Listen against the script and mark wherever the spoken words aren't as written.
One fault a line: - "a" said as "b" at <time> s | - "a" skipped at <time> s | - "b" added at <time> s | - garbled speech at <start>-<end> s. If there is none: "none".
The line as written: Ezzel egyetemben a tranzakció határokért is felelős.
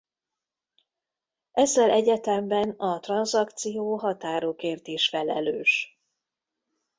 none